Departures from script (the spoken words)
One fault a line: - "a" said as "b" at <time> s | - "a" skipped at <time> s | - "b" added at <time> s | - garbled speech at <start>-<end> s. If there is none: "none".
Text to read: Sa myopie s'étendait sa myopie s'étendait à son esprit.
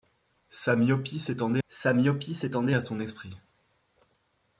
none